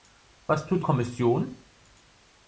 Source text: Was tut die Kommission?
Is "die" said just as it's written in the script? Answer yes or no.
no